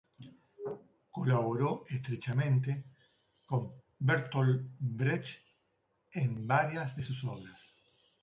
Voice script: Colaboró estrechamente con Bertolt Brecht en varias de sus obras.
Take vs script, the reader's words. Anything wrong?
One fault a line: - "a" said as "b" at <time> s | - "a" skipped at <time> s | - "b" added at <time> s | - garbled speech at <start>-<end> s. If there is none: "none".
none